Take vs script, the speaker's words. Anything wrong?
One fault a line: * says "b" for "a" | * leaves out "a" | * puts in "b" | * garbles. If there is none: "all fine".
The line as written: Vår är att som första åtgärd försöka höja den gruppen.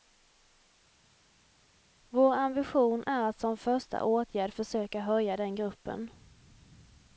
* puts in "ambition"